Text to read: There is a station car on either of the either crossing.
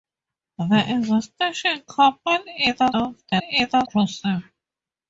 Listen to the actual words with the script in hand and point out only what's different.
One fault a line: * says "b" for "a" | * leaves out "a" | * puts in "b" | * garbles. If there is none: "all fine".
all fine